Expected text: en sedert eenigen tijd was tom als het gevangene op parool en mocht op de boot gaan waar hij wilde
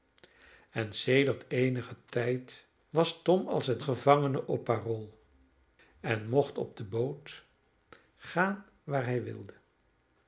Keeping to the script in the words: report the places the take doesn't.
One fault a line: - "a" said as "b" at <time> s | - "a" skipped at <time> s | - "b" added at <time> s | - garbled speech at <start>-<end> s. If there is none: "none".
none